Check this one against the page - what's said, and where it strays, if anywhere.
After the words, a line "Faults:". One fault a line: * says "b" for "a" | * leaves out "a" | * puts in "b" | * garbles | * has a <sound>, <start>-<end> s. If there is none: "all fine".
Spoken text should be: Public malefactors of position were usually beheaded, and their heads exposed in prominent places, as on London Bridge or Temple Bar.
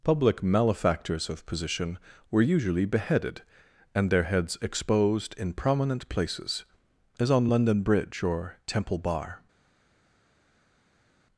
Public malefactors of position were usually beheaded, and their heads exposed in prominent places, as on London Bridge or Temple Bar.
Faults:
all fine